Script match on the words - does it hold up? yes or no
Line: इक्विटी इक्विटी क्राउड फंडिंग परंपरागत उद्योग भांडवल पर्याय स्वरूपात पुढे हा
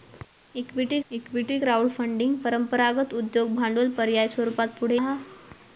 yes